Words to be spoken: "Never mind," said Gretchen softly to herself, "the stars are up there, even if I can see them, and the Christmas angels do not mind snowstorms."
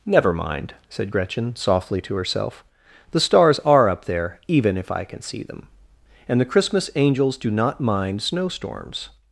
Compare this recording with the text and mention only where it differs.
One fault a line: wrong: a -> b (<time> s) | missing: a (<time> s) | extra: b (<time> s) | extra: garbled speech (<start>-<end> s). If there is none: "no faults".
no faults